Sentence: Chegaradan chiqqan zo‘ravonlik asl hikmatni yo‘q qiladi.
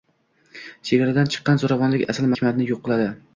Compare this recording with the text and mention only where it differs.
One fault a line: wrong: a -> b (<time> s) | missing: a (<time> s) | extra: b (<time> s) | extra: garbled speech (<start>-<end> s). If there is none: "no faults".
no faults